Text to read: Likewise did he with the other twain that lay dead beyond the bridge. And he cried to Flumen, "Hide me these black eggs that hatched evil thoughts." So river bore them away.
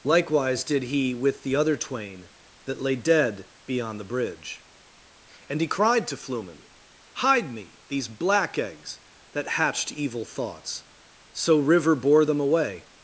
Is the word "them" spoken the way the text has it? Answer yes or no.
yes